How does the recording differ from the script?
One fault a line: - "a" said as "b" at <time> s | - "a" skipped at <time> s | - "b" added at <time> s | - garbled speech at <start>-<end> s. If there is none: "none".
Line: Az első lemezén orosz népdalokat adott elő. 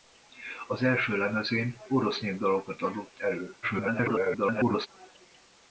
- garbled speech at 3.6-4.9 s